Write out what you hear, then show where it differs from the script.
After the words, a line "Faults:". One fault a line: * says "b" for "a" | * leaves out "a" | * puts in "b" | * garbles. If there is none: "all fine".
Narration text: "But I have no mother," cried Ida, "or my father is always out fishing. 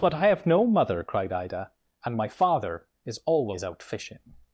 "But I have no mother," cried Ida, "and my father is always out fishing.
Faults:
* says "and" for "or"